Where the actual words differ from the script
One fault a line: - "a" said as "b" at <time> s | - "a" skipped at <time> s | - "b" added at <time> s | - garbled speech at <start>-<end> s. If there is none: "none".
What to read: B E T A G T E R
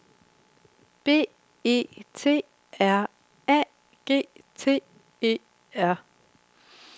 - "R" added at 2.8 s